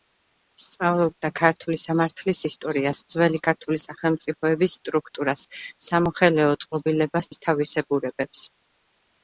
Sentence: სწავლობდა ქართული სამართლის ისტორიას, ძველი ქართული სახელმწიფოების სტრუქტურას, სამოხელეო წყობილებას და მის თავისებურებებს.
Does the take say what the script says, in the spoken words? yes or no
no